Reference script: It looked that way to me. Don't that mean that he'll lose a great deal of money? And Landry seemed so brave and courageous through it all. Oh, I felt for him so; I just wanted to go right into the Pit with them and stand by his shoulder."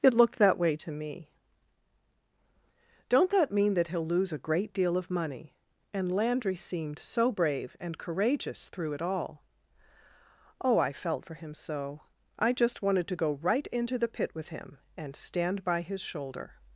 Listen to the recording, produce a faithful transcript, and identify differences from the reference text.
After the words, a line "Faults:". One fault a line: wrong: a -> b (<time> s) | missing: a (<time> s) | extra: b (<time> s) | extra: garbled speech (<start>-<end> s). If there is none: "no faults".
It looked that way to me. Don't that mean that he'll lose a great deal of money? And Landry seemed so brave and courageous through it all. Oh, I felt for him so; I just wanted to go right into the Pit with him and stand by his shoulder."
Faults:
wrong: them -> him (14.5 s)